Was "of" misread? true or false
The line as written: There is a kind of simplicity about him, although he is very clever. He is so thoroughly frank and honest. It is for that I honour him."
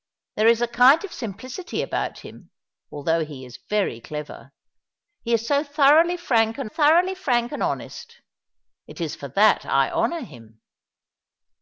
false